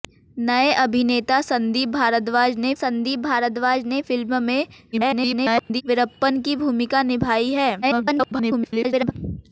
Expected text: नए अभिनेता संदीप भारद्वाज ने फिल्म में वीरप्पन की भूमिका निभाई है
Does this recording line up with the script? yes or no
no